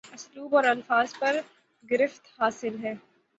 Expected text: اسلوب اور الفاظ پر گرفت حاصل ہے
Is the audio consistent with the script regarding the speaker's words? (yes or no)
yes